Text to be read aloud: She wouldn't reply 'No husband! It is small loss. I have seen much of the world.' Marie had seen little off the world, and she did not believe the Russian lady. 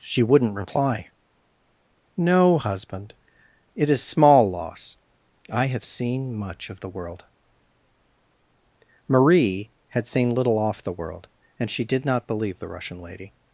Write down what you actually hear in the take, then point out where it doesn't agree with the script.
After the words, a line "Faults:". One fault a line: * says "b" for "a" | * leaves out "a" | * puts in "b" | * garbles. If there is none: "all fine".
She wouldn't reply 'No husband! It is small loss. I have seen much of the world.' Marie had seen little off the world, and she did not believe the Russian lady.
Faults:
all fine